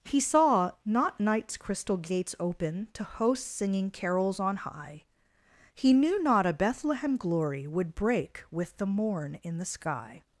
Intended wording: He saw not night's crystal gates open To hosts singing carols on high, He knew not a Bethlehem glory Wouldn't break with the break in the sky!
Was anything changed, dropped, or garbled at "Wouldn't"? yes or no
yes